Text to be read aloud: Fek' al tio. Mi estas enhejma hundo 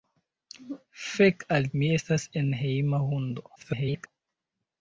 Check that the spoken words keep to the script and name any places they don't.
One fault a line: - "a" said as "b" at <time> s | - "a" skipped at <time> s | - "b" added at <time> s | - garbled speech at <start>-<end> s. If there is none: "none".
- "tio" skipped at 1.7 s
- garbled speech at 3.6-4.1 s